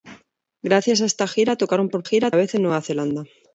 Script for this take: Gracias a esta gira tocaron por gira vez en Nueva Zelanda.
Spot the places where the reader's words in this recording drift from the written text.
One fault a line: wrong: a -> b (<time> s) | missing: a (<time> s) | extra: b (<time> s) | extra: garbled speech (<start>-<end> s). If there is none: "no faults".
no faults